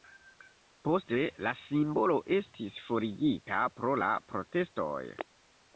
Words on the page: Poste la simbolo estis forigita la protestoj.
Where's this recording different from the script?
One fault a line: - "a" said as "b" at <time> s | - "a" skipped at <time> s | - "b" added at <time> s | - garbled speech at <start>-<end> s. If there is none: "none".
- "pro" added at 3.8 s